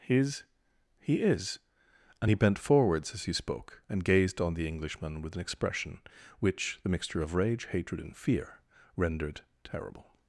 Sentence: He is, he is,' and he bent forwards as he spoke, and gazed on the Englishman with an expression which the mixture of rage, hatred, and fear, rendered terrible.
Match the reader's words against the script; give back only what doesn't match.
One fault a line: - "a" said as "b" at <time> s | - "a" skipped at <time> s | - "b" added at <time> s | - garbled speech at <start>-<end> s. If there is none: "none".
- "He is" said as "His" at 0.0 s